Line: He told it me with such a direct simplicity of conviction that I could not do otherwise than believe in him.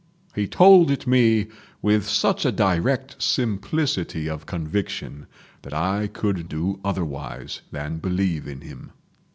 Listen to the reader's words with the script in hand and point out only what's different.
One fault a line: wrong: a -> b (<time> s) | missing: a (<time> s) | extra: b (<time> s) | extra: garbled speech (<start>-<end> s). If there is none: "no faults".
missing: not (6.5 s)